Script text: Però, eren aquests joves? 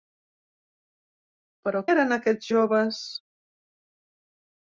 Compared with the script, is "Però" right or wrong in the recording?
right